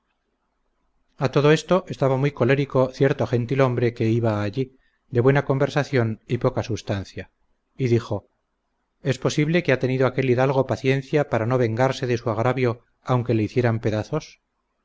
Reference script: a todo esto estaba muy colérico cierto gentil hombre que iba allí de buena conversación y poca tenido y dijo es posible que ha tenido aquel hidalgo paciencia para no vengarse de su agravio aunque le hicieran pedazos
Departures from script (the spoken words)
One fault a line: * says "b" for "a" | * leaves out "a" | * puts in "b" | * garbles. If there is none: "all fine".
* says "substancia" for "tenido"